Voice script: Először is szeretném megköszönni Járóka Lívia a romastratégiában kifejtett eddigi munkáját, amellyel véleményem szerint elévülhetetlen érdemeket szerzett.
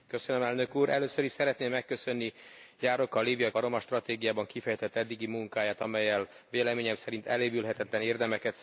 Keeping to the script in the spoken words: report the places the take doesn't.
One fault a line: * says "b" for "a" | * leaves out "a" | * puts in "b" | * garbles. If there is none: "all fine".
all fine